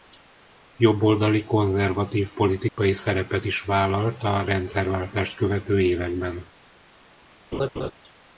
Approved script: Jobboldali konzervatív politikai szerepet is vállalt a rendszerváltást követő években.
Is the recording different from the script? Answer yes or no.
no